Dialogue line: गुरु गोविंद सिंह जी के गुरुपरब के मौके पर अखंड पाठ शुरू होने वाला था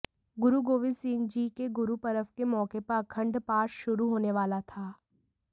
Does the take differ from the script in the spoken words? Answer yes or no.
no